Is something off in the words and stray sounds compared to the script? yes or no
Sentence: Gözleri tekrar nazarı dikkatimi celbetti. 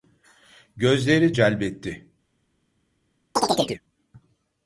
yes